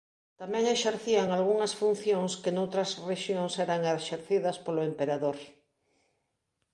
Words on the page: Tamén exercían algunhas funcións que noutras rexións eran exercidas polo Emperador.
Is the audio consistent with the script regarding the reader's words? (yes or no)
yes